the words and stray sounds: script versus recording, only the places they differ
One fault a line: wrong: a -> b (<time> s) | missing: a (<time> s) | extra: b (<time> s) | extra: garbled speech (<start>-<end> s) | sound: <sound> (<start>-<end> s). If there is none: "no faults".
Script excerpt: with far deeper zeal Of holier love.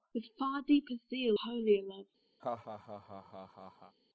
missing: Of (1.4 s)
sound: laugh (2.4-3.9 s)